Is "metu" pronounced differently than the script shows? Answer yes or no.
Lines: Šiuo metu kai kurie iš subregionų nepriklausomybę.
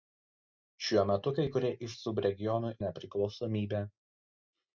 no